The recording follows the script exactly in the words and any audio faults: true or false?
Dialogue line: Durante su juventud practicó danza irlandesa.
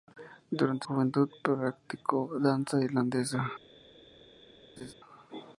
false